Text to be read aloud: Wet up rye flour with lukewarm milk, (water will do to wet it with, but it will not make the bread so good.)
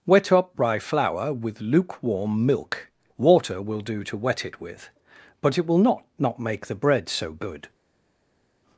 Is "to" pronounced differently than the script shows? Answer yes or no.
no